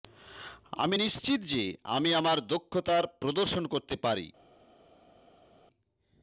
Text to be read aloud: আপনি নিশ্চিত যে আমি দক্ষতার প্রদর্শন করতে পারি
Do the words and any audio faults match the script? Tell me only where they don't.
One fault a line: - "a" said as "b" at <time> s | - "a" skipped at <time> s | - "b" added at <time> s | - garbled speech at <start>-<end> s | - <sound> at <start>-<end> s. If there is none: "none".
- "আপনি" said as "আমি" at 0.8 s
- "আমার" added at 2.1 s